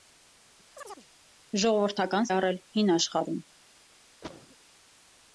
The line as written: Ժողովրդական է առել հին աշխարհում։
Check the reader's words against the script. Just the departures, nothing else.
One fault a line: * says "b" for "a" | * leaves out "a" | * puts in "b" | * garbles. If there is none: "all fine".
all fine